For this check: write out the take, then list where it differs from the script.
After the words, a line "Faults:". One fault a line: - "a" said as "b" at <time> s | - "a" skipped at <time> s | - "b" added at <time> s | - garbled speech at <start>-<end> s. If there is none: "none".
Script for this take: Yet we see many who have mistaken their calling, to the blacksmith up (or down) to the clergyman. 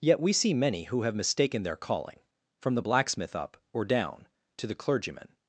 Yet we see many who have mistaken their calling, from the blacksmith up (or down) to the clergyman.
Faults:
- "to" said as "from" at 2.6 s